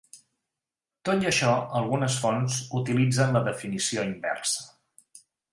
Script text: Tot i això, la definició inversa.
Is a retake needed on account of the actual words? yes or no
yes